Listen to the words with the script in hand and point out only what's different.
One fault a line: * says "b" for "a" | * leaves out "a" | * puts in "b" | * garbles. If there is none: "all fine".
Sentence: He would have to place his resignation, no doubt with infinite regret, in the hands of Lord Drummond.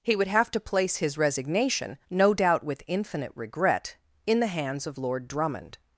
all fine